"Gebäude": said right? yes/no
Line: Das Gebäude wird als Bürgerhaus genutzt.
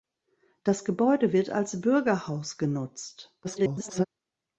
yes